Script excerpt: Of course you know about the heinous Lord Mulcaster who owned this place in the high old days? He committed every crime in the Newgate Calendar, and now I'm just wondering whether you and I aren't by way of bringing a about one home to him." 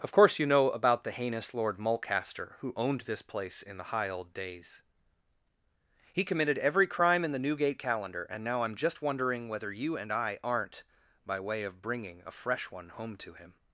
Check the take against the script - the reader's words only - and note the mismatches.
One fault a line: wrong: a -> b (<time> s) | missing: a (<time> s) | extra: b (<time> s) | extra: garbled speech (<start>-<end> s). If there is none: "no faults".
wrong: about -> fresh (12.3 s)